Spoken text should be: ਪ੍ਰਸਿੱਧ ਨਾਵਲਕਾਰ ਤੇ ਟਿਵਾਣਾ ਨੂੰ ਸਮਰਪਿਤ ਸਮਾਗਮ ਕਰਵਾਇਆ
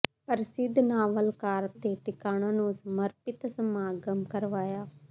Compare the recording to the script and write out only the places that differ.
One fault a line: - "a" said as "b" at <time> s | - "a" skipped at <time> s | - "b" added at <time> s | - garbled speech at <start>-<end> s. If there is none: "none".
none